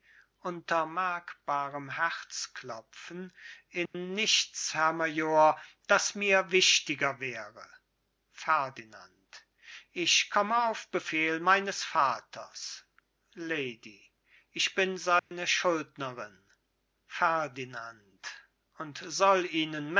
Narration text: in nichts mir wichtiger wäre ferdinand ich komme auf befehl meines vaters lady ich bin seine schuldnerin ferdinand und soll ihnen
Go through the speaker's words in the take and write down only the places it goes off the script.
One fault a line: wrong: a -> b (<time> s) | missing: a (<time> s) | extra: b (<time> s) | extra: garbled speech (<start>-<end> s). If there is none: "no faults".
extra: herr major das (4.7 s)